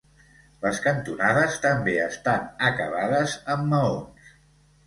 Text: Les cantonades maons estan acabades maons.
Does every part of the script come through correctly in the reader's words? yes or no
no